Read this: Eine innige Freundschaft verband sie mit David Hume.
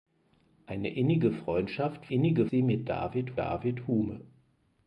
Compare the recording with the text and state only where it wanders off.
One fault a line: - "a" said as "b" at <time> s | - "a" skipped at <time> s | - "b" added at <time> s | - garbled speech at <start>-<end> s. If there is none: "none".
- "verband" said as "innige" at 2.1 s
- "David" added at 3.4 s